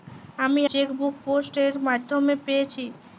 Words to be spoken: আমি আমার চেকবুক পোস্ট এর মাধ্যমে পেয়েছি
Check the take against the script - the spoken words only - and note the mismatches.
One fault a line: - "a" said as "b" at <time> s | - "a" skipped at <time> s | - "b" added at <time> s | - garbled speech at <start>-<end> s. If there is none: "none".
- "আমার" skipped at 0.6 s